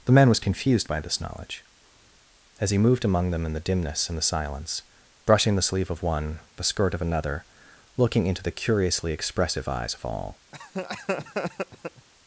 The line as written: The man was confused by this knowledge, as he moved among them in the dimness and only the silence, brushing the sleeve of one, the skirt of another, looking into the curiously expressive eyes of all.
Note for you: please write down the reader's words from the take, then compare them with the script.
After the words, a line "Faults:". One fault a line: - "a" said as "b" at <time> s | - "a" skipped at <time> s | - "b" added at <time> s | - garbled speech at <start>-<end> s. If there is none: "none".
The man was confused by this knowledge, as he moved among them in the dimness and the silence, brushing the sleeve of one, the skirt of another, looking into the curiously expressive eyes of all.
Faults:
- "only" skipped at 4.2 s